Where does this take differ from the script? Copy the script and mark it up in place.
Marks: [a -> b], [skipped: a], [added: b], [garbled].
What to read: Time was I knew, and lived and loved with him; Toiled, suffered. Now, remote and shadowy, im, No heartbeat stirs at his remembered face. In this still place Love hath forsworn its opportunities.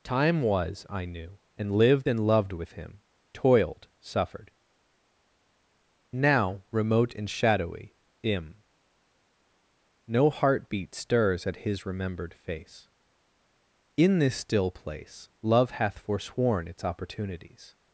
Time was I knew, and lived and loved with him; Toiled, suffered. Now, remote and shadowy, im, No heartbeat stirs at his remembered face. In this still place Love hath forsworn its opportunities.